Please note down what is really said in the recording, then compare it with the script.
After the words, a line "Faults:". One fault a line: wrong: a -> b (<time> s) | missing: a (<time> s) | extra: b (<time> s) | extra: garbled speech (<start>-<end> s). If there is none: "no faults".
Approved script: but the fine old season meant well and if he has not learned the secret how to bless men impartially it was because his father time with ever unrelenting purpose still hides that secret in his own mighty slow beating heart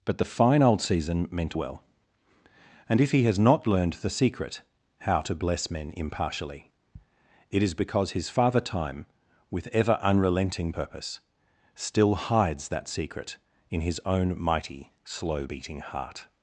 but the fine old season meant well and if he has not learned the secret how to bless men impartially it is because his father time with ever unrelenting purpose still hides that secret in his own mighty slow beating heart
Faults:
wrong: was -> is (7.6 s)